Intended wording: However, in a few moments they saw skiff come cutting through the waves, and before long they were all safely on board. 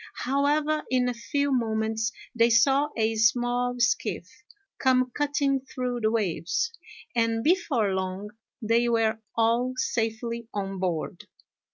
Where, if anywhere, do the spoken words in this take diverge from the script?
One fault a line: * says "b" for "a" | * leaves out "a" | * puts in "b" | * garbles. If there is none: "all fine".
* puts in "a small"